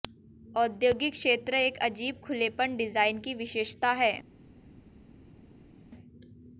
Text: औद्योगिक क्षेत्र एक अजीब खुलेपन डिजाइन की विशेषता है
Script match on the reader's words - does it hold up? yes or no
yes